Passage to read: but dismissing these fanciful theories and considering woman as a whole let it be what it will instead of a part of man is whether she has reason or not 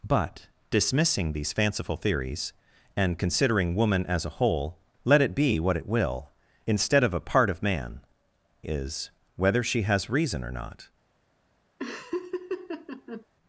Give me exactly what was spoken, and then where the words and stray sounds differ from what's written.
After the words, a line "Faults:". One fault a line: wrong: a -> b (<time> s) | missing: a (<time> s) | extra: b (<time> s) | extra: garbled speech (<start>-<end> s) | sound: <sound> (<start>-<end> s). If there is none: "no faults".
but dismissing these fanciful theories and considering woman as a whole let it be what it will instead of a part of man is whether she has reason or not
Faults:
sound: laugh (11.8-13.3 s)